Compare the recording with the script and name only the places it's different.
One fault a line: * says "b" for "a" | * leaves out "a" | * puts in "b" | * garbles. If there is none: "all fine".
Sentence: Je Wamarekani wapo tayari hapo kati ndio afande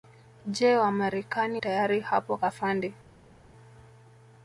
* leaves out "wapo"
* leaves out "kati ndio"